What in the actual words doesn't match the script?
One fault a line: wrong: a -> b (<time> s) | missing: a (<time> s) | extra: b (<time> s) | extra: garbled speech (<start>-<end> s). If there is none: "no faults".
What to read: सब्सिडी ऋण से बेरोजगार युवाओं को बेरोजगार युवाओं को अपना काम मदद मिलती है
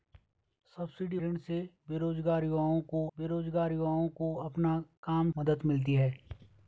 no faults